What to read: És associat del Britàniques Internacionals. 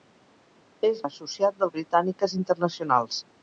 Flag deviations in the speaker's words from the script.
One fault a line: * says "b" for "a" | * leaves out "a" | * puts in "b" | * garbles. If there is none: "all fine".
all fine